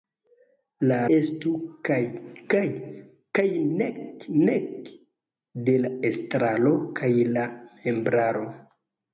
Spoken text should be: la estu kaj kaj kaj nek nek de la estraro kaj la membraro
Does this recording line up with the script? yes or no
yes